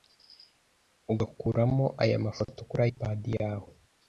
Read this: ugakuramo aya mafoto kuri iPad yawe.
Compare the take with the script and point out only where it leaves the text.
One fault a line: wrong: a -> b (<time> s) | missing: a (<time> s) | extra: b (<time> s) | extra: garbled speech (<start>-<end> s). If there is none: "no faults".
no faults